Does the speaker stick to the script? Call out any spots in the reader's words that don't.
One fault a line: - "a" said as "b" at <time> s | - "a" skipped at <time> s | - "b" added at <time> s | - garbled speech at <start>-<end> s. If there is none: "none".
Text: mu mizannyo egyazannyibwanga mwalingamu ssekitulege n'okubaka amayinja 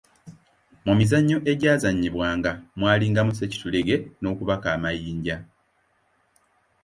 none